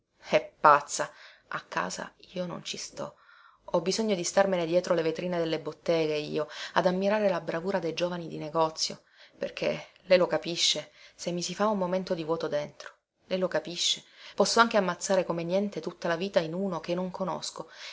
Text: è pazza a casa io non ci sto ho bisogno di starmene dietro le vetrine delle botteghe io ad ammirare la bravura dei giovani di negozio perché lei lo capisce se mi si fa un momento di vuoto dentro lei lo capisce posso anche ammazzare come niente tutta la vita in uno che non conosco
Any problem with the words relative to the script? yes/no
no